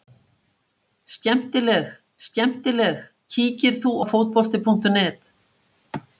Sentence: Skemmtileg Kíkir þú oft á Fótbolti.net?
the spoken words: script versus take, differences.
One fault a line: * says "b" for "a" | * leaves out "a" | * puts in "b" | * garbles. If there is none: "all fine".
* puts in "skemmtileg"
* leaves out "oft"